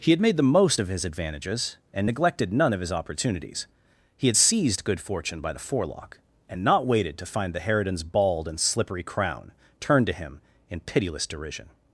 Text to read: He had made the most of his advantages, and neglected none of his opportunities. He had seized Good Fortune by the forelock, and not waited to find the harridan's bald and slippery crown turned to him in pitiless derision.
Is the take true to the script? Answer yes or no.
yes